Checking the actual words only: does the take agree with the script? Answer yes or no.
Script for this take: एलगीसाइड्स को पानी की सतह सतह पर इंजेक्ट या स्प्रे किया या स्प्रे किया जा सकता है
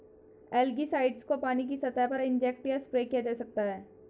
no